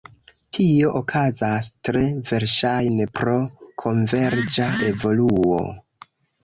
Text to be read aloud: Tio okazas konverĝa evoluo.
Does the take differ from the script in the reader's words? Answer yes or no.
yes